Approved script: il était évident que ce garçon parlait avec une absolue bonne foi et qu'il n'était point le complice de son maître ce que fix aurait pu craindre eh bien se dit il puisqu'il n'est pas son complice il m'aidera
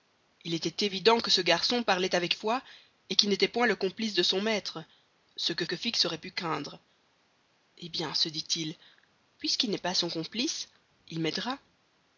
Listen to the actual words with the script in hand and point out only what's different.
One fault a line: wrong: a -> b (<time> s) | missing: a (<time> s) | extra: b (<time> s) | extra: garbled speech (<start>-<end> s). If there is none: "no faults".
missing: une absolue bonne (2.3 s)
extra: que (5.6 s)